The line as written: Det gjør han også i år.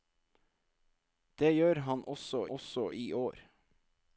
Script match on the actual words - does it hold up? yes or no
no